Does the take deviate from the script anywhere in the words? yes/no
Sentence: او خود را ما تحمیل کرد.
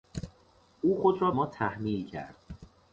no